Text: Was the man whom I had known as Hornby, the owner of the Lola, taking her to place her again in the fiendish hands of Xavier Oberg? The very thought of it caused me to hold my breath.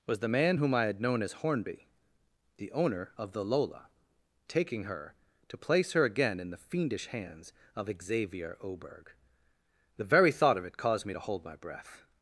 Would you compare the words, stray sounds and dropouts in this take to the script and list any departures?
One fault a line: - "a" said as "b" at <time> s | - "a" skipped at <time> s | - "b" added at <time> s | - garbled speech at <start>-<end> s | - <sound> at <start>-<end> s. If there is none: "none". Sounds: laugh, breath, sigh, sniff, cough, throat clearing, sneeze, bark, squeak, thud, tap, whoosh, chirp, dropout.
none